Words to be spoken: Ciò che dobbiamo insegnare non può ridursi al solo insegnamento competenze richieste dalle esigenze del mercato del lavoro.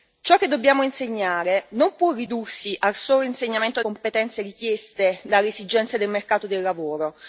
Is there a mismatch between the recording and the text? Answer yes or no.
no